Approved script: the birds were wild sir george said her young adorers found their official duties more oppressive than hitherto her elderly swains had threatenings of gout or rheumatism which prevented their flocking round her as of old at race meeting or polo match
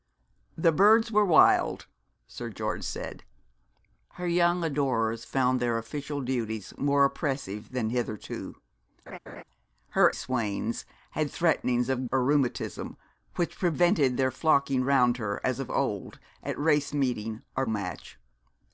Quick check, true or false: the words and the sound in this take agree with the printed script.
false